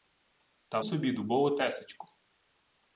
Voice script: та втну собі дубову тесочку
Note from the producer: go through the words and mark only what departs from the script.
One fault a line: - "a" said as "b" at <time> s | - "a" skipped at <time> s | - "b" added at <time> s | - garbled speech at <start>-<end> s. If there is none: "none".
- "втну" skipped at 0.8 s